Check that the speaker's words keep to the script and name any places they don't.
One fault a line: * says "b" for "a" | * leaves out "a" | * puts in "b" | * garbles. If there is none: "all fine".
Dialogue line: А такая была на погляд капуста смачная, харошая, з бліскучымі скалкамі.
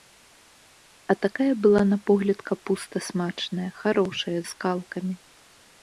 * leaves out "з бліскучымі"